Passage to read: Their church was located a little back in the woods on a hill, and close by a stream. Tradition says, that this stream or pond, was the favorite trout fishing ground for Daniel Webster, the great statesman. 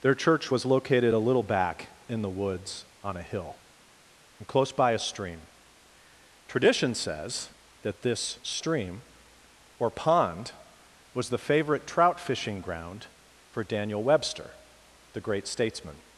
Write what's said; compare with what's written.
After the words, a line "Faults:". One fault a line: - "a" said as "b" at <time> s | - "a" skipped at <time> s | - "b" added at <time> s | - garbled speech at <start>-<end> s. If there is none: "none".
Their church was located a little back in the woods on a hill, and close by a stream. Tradition says, that this stream or pond, was the favorite trout fishing ground for Daniel Webster, the great statesman.
Faults:
none